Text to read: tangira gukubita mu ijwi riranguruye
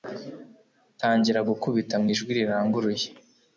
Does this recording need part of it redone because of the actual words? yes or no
no